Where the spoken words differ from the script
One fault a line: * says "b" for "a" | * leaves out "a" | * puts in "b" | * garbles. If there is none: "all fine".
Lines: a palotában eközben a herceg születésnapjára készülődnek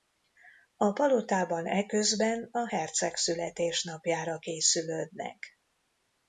all fine